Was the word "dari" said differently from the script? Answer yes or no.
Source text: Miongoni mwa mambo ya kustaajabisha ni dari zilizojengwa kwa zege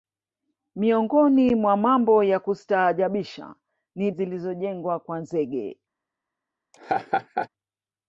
yes